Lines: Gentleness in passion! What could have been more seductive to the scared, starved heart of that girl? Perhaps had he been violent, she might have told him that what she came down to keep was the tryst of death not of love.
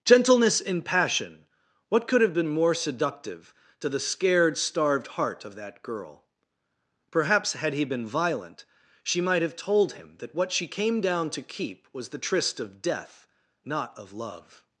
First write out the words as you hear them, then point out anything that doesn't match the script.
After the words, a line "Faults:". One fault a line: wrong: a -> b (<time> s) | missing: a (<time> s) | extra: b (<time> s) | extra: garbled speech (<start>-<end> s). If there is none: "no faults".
Gentleness in passion! What could have been more seductive to the scared, starved heart of that girl? Perhaps had he been violent, she might have told him that what she came down to keep was the tryst of death not of love.
Faults:
no faults